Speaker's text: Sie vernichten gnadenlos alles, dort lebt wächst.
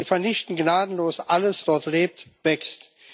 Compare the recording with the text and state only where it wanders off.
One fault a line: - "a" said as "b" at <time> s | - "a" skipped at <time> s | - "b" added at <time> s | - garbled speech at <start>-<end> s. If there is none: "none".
none